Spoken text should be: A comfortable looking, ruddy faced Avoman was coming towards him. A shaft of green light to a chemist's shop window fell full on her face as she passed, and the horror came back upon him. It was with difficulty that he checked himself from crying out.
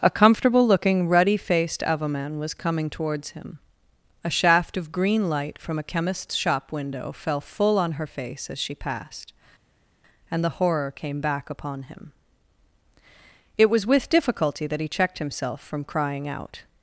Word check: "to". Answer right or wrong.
wrong